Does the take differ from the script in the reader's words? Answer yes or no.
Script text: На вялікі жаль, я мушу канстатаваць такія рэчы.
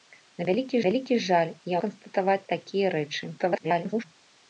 yes